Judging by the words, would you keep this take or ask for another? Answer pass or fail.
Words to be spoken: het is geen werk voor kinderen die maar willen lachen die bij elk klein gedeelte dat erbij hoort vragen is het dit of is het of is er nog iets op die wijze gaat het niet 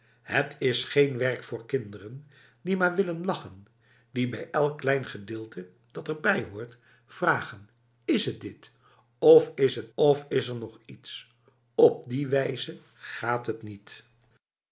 pass